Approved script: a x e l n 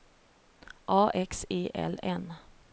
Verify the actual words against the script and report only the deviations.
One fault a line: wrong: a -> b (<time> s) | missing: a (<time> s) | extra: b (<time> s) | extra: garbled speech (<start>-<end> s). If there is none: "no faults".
no faults